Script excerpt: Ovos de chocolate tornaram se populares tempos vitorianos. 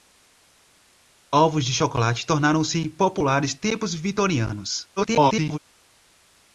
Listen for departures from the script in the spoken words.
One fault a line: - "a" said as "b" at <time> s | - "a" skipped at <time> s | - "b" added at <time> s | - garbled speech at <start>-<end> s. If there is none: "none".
- garbled speech at 5.0-5.6 s